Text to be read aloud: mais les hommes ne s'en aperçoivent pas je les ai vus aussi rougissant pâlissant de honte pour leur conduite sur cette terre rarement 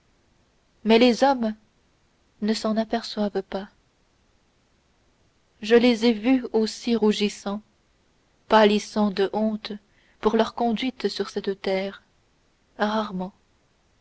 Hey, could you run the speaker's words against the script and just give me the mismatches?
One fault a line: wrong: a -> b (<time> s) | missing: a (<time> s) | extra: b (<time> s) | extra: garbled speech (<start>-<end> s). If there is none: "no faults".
no faults